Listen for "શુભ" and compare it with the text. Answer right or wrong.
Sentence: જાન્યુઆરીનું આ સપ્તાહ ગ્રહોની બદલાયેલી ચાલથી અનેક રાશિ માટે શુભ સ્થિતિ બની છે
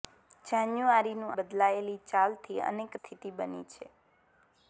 wrong